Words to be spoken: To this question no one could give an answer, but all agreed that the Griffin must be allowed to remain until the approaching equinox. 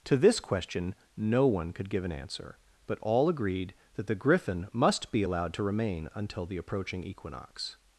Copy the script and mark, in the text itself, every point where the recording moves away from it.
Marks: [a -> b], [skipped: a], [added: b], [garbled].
To this question no one could give an answer, but all agreed that the Griffin must be allowed to remain until the approaching equinox.